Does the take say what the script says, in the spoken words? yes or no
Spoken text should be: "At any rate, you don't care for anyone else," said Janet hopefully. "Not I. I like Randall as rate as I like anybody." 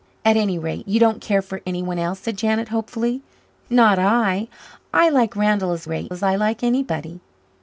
yes